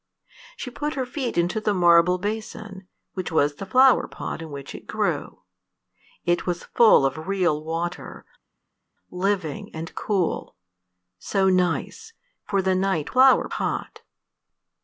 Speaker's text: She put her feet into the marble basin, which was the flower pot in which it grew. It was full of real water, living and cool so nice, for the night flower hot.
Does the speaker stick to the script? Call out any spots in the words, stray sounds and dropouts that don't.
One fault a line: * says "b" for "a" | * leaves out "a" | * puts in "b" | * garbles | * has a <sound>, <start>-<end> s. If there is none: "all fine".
all fine